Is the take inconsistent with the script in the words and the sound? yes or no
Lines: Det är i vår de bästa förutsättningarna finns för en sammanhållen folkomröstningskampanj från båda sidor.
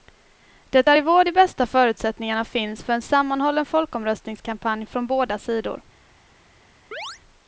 yes